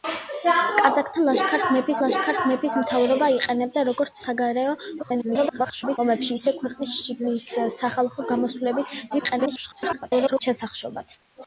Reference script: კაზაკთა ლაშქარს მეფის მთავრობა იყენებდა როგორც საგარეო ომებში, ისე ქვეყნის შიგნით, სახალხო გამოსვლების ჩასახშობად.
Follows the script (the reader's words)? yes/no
no